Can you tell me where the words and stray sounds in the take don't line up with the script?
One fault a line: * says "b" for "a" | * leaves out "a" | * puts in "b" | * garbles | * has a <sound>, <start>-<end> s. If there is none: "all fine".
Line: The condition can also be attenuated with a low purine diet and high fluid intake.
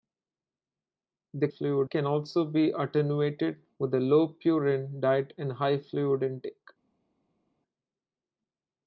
* says "fluid" for "condition"